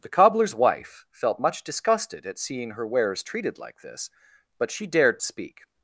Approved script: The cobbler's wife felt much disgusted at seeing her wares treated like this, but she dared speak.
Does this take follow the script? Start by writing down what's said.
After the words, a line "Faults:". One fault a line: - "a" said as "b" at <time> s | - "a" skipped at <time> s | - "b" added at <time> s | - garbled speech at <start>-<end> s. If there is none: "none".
The cobbler's wife felt much disgusted at seeing her wares treated like this, but she dared speak.
Faults:
none